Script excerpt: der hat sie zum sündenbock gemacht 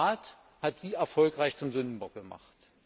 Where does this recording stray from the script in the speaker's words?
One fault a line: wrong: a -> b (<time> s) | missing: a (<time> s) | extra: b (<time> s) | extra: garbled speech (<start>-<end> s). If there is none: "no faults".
extra: rat (0.1 s)
extra: erfolgreich (0.9 s)